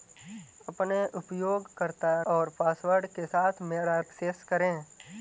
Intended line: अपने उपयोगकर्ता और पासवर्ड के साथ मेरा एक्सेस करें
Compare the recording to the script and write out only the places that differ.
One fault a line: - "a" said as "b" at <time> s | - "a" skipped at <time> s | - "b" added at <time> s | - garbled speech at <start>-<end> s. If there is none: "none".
none